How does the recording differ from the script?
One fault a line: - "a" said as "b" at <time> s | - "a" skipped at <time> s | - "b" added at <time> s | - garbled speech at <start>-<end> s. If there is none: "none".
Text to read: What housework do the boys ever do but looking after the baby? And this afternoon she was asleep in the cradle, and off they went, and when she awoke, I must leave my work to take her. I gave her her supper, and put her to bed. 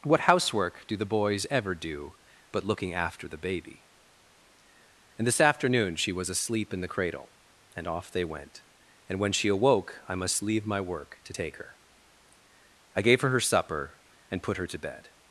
none